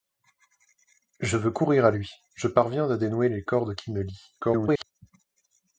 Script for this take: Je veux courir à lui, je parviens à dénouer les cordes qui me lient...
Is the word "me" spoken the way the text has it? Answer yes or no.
yes